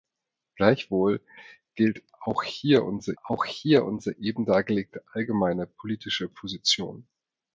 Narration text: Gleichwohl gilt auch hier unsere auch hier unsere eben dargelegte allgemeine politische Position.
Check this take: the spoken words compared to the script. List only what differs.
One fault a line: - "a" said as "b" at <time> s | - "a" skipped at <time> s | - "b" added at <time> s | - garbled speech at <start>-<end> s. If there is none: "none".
none